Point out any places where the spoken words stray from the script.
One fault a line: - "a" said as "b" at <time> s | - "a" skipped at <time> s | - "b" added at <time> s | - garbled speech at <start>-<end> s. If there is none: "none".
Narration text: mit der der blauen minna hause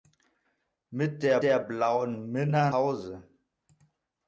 none